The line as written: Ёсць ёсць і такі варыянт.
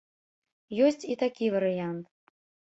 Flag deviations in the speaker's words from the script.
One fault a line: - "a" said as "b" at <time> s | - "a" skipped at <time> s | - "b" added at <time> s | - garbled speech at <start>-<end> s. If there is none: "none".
- "ёсць" skipped at 1.1 s